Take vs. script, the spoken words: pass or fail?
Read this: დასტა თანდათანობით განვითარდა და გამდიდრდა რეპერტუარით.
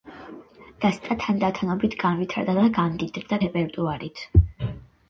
pass